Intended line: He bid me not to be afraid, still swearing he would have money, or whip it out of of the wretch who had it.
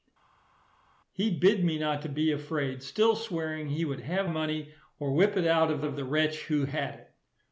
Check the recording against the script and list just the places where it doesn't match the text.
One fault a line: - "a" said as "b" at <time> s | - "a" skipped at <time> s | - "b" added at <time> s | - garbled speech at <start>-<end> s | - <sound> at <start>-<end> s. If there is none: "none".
none